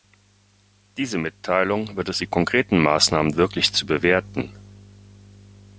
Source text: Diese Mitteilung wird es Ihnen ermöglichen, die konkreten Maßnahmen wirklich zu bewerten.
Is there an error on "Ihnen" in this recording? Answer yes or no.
yes